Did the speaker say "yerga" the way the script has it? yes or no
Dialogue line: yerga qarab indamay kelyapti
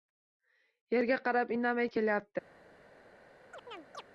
yes